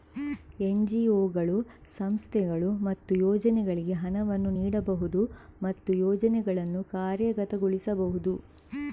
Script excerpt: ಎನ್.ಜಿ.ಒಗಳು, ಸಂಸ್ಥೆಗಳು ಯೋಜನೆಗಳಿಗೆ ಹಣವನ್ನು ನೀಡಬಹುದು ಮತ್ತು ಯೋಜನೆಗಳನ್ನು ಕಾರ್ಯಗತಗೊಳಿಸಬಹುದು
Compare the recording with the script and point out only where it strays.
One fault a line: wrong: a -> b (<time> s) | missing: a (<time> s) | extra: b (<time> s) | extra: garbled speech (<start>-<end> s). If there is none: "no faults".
extra: ಮತ್ತು (2.9 s)